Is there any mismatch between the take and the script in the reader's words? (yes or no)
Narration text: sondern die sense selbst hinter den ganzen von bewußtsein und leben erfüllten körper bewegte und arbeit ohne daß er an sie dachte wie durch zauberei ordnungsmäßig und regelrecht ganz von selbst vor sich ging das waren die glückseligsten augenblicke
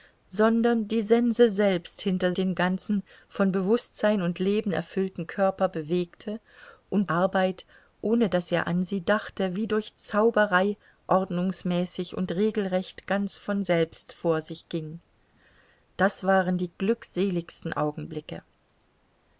no